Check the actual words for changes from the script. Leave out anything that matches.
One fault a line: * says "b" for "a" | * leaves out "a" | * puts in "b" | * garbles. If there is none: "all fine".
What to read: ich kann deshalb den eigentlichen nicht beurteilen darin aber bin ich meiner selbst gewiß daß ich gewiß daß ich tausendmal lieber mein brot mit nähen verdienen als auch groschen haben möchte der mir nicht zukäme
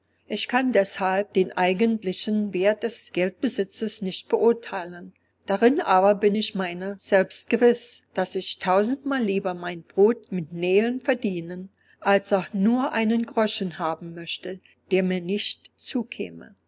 * puts in "wert des geldbesitzes"
* leaves out "gewiß daß ich"
* puts in "nur einen"